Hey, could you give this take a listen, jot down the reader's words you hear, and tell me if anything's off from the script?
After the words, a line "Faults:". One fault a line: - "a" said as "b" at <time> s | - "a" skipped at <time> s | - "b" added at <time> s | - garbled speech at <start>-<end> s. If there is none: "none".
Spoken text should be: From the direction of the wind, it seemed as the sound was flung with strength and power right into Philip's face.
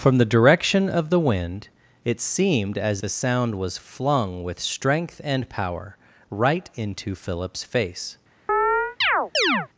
From the direction of the wind, it seemed as the sound was flung with strength and power right into Philip's face.
Faults:
none